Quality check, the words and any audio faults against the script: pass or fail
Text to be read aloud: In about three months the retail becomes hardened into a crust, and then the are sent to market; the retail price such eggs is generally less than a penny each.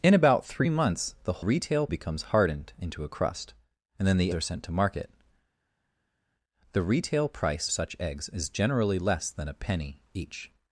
pass